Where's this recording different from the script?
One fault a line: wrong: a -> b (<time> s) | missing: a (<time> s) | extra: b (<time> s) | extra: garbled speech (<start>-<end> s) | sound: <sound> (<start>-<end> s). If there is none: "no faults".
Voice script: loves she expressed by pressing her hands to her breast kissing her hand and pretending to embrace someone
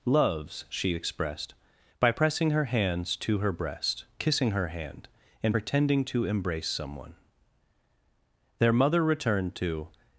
extra: their mother returned to (8.6 s)